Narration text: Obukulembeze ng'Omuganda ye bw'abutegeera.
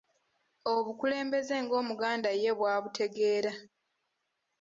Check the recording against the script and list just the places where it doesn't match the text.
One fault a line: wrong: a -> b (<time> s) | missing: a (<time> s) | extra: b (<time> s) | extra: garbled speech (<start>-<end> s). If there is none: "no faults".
no faults